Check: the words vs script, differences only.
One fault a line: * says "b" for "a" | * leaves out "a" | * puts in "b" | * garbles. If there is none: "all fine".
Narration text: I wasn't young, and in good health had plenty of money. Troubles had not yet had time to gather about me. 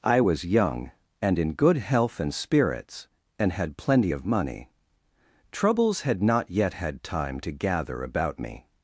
* says "was" for "wasn't"
* puts in "and spirits and"